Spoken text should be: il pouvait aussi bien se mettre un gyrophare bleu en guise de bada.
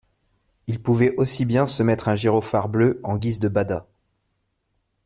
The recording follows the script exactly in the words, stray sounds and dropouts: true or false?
true